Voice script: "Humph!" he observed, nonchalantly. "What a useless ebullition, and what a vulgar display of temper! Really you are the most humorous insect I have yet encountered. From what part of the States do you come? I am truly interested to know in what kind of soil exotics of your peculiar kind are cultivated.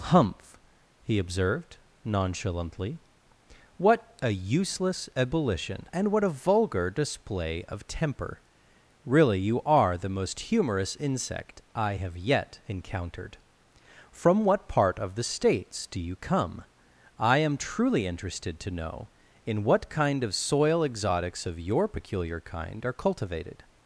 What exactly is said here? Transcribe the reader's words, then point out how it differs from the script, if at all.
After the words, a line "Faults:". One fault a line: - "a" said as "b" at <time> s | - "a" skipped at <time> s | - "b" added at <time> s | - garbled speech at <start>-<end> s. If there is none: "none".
"Humph!" he observed, nonchalantly. "What a useless ebullition, and what a vulgar display of temper! Really you are the most humorous insect I have yet encountered. From what part of the States do you come? I am truly interested to know in what kind of soil exotics of your peculiar kind are cultivated.
Faults:
none